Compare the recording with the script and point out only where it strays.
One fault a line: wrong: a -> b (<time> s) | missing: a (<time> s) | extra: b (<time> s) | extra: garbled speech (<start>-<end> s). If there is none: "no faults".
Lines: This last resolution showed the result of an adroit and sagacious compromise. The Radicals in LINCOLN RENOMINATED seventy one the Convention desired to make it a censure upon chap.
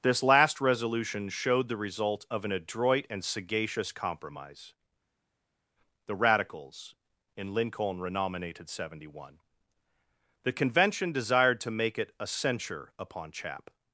no faults